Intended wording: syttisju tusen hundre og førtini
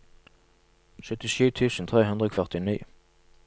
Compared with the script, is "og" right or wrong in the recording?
right